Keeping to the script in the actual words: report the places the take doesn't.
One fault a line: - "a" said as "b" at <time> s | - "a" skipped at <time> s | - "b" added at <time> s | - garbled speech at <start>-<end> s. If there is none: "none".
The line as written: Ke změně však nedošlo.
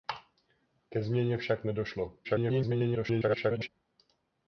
- garbled speech at 2.2-3.7 s